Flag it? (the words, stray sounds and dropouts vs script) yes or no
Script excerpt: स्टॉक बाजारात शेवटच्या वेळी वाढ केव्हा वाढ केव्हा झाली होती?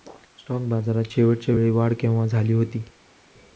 yes